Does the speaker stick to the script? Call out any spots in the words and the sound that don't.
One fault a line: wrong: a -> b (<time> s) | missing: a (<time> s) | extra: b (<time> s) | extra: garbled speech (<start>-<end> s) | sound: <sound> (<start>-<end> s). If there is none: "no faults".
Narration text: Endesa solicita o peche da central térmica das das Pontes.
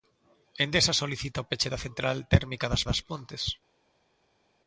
no faults